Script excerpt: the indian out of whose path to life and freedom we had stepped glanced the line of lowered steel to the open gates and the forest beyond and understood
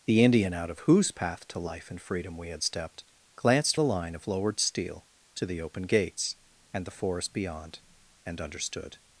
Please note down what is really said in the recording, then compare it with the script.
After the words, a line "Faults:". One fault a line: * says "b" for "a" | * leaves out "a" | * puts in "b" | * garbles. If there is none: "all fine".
the indian out of whose path to life and freedom we had stepped glanced the line of lowered steel to the open gates and the forest beyond and understood
Faults:
all fine